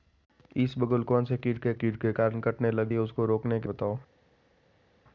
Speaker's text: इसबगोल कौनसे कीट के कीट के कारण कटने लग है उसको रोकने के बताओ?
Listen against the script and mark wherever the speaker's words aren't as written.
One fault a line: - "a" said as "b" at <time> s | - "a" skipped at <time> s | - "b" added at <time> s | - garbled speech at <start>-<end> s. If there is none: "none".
none